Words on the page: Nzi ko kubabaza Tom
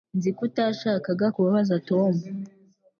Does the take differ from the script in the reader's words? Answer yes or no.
yes